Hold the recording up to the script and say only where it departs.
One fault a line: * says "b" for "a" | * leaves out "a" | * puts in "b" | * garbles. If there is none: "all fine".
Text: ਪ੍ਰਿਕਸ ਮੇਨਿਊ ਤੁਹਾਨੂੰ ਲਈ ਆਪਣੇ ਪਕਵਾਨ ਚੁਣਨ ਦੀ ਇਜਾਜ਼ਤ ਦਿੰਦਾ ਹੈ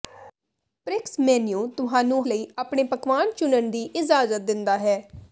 all fine